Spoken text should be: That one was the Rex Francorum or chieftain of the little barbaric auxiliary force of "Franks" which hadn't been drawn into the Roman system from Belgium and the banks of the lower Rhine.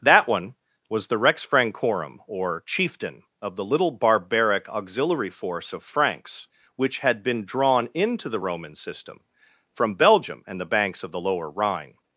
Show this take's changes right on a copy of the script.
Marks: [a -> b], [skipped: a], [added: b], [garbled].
That one was the Rex Francorum or chieftain of the little barbaric auxiliary force of "Franks" which [hadn't -> had] been drawn into the Roman system from Belgium and the banks of the lower Rhine.